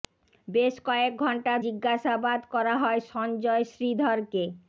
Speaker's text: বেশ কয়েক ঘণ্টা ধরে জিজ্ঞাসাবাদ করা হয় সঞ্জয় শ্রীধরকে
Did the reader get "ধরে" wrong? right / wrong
wrong